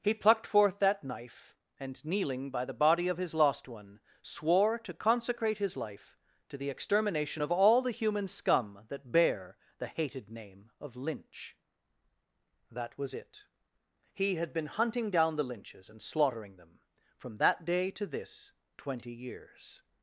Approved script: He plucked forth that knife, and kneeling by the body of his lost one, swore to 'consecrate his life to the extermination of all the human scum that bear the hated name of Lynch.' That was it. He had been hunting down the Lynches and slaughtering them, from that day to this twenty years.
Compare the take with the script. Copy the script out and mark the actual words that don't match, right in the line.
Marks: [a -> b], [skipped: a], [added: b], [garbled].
He plucked forth that knife, and kneeling by the body of his lost one, swore to 'consecrate his life to the extermination of all the human scum that bear the hated name of Lynch.' That was it. He had been hunting down the Lynches and slaughtering them, from that day to this twenty years.